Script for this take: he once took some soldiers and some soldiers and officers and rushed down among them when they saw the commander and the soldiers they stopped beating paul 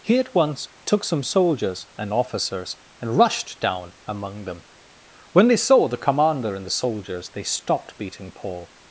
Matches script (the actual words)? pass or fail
fail